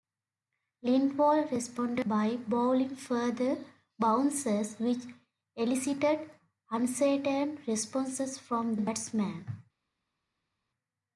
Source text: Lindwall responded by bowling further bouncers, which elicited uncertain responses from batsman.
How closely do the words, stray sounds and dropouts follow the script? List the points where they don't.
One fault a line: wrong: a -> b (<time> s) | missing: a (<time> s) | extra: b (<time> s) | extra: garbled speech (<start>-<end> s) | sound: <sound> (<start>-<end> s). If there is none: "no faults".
no faults